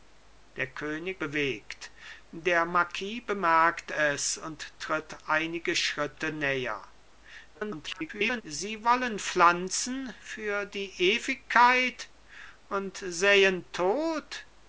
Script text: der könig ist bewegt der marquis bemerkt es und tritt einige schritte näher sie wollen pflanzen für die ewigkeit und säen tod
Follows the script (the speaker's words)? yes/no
no